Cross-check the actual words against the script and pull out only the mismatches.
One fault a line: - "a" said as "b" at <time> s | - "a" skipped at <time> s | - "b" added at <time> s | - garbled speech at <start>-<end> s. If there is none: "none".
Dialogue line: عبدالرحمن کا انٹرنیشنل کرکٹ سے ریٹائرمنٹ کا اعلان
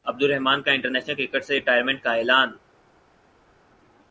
none